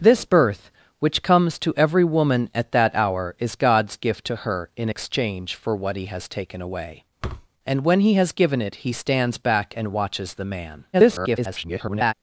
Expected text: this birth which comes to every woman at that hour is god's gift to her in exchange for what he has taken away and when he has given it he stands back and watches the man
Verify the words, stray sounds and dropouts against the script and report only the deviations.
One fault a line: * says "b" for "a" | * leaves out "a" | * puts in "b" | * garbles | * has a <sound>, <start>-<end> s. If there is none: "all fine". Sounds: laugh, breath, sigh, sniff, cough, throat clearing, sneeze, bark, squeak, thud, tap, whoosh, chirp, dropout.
* has a thud, 7.2-7.5 s
* garbles